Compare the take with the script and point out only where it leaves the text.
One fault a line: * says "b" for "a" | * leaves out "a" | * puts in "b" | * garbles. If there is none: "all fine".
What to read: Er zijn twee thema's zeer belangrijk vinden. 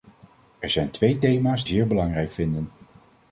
all fine